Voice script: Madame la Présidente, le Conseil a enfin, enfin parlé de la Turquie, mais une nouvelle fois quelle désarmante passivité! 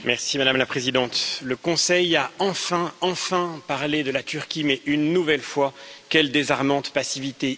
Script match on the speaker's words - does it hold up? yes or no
yes